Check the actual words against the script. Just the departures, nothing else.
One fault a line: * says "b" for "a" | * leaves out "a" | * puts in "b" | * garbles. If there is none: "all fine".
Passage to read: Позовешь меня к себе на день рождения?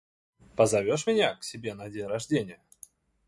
all fine